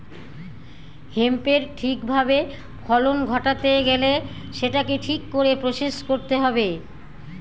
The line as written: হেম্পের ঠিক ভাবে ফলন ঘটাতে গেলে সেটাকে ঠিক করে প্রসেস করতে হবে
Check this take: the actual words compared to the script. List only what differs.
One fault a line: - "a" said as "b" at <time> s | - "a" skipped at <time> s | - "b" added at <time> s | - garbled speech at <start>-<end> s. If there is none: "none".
none